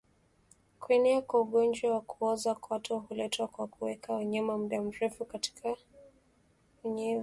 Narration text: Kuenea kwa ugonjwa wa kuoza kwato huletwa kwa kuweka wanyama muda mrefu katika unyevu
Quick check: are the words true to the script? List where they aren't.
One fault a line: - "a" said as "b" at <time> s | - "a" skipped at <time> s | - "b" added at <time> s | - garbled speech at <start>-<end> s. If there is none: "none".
none